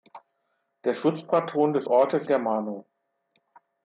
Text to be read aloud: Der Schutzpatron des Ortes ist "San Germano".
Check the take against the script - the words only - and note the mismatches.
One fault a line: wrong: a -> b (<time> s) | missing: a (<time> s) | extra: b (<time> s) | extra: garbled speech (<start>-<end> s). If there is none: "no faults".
missing: ist San (2.3 s)